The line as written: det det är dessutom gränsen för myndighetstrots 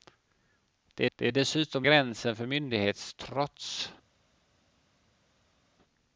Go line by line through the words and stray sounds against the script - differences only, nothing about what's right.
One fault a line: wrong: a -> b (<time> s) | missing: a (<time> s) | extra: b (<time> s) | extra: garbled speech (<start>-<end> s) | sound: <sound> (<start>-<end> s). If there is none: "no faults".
no faults